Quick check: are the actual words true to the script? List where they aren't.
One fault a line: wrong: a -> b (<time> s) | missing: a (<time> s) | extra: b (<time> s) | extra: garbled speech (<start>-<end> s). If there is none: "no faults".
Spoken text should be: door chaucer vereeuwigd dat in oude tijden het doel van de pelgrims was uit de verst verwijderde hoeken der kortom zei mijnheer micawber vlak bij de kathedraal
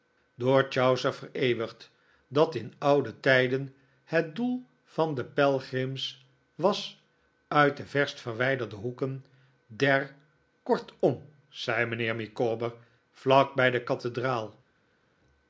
no faults